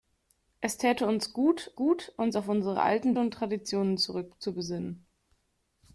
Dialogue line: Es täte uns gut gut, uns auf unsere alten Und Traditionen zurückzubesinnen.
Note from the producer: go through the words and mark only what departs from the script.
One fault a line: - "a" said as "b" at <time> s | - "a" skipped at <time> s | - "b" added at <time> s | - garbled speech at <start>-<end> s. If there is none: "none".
none